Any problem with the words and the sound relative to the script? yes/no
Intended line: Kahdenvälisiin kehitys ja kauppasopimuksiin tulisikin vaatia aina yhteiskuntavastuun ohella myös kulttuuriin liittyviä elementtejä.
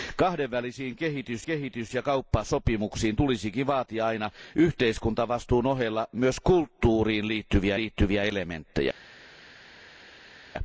yes